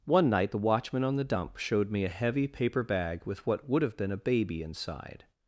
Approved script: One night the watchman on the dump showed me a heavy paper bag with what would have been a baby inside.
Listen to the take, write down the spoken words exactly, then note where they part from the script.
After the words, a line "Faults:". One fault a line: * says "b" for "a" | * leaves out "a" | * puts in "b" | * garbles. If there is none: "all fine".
One night the watchman on the dump showed me a heavy paper bag with what would have been a baby inside.
Faults:
all fine